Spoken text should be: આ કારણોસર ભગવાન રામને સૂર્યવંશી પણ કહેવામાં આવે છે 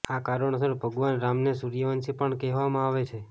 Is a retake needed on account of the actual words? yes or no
no